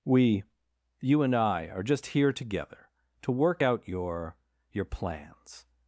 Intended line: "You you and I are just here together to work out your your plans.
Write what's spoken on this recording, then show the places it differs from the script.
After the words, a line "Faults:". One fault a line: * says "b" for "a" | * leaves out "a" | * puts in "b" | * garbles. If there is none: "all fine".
"We you and I are just here together to work out your your plans.
Faults:
* says "We" for "You"